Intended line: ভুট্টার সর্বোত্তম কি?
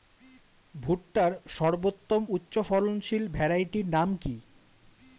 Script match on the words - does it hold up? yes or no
no